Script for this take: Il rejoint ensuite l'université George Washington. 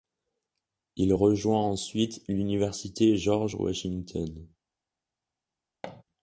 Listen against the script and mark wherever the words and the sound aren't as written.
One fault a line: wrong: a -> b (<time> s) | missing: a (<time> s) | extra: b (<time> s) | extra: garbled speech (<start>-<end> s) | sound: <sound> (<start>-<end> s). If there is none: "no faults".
sound: thud (5.8-6.0 s)